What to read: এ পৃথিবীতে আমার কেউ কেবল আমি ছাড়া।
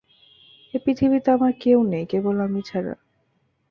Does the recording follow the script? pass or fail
fail